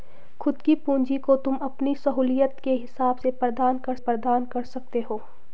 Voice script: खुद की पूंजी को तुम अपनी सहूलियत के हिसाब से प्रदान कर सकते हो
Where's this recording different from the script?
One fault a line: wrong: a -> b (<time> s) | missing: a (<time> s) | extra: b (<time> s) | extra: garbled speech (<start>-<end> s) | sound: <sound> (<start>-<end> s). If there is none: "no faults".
extra: प्रदान कर (4.0 s)